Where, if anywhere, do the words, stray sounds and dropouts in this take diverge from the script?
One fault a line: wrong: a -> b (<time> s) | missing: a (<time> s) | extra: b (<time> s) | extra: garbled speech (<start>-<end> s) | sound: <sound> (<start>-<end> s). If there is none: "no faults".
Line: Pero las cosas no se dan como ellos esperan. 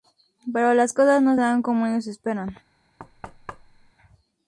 sound: thud (3.0-3.9 s)